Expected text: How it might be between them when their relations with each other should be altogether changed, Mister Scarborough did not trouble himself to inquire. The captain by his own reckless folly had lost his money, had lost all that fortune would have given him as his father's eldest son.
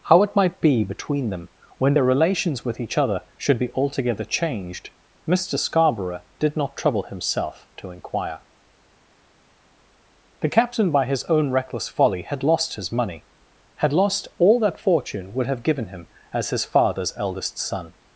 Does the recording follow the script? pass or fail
pass